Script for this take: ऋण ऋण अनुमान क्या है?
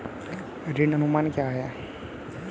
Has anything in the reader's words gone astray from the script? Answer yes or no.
yes